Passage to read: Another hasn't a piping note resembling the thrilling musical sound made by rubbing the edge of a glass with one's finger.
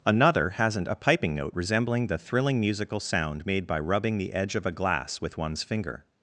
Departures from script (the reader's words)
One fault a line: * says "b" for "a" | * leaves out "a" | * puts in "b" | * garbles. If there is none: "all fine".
all fine